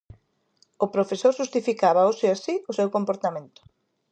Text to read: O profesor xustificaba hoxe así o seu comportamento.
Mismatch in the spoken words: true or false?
false